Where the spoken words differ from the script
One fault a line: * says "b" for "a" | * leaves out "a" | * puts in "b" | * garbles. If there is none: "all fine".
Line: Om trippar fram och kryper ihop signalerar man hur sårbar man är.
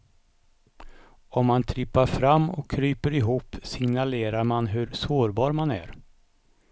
* puts in "man"